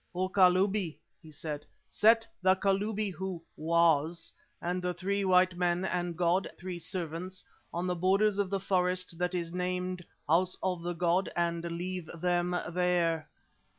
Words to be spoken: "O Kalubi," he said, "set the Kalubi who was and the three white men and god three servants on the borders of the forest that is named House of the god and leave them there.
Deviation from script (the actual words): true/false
false